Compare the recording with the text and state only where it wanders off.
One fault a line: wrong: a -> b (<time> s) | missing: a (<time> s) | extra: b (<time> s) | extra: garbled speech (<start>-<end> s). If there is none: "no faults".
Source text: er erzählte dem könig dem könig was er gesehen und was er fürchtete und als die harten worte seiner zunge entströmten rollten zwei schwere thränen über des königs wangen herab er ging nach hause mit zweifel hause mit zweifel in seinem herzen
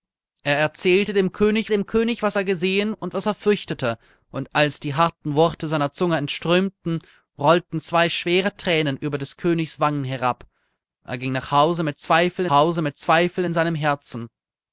no faults